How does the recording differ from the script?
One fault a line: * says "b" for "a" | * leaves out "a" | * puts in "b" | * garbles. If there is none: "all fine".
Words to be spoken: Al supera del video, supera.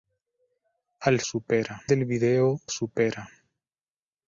all fine